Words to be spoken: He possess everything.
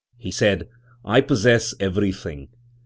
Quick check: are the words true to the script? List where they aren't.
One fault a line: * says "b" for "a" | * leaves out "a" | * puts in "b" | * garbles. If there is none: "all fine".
* puts in "said I"